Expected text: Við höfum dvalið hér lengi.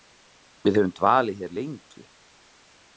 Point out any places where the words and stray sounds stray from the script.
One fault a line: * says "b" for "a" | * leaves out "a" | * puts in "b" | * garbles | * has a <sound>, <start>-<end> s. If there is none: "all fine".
all fine